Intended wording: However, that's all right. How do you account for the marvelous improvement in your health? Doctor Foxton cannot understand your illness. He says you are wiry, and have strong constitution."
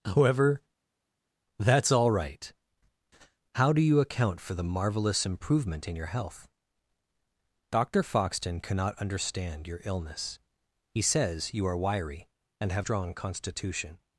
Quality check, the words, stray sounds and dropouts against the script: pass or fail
pass